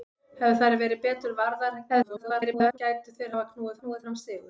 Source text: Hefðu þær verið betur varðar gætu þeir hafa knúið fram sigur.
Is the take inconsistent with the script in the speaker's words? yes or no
yes